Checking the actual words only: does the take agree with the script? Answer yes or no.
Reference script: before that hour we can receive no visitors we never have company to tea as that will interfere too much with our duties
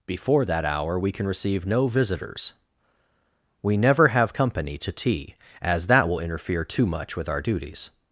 yes